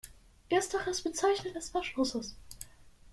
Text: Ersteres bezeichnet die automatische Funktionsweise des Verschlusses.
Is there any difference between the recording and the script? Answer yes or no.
yes